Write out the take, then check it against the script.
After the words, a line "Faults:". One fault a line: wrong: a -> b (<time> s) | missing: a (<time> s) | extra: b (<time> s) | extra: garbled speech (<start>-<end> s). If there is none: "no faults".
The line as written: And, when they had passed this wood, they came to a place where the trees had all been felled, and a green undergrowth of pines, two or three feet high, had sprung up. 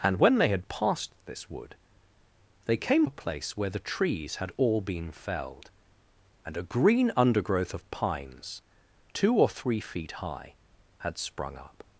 And, when they had passed this wood, they came a place where the trees had all been felled, and a green undergrowth of pines, two or three feet high, had sprung up.
Faults:
missing: to (3.0 s)